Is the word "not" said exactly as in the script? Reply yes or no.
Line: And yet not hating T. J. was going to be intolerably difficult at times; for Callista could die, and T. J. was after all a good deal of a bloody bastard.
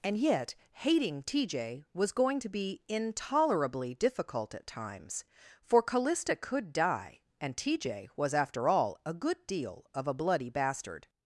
no